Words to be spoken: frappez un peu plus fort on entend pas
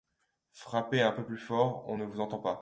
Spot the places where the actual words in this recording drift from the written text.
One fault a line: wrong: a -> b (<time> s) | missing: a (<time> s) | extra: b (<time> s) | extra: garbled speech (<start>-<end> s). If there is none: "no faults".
extra: ne vous (1.9 s)